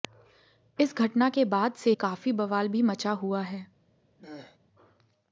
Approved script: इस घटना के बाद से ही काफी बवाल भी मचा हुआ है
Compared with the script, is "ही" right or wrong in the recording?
wrong